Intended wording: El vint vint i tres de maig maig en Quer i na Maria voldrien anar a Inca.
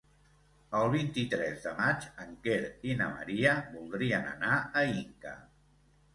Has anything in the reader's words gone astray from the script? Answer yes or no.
yes